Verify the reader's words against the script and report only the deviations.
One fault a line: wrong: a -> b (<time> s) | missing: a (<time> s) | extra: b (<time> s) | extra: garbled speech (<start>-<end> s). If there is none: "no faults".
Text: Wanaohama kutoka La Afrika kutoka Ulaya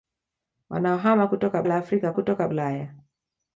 no faults